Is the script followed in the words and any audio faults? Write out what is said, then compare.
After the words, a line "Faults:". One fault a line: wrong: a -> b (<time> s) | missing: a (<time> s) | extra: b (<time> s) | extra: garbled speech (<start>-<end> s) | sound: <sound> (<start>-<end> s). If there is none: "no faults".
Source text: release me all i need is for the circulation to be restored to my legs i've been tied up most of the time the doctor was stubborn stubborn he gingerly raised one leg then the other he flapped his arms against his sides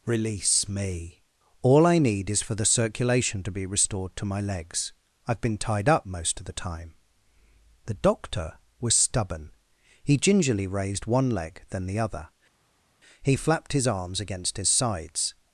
release me all i need is for the circulation to be restored to my legs i've been tied up most of the time the doctor was stubborn he gingerly raised one leg then the other he flapped his arms against his sides
Faults:
missing: stubborn (9.5 s)